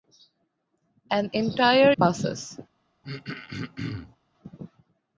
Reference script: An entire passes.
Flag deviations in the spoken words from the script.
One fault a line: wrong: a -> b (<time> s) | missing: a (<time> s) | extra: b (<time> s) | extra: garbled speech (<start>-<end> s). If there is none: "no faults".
no faults